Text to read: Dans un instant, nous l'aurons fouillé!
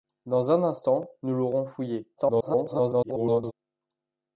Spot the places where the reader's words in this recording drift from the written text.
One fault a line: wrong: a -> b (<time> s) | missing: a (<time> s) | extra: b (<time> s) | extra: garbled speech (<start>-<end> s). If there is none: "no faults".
extra: garbled speech (2.2-3.5 s)